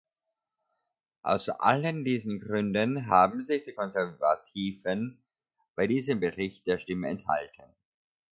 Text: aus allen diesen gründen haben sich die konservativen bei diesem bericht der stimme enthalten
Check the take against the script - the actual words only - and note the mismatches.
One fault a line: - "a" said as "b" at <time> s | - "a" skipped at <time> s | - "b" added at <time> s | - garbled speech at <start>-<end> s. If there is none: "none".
none